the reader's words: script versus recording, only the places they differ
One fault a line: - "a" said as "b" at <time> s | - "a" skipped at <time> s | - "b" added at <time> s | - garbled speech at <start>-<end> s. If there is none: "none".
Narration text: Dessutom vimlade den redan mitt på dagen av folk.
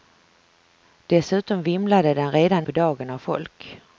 - "mitt" skipped at 2.7 s